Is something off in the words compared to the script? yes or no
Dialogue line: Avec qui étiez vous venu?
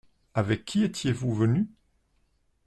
no